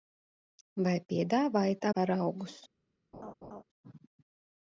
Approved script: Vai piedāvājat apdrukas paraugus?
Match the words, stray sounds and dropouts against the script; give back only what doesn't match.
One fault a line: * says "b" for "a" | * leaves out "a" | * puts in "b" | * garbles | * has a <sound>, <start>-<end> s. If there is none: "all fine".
* leaves out "apdrukas"
* has a laugh, 3.1-3.6 s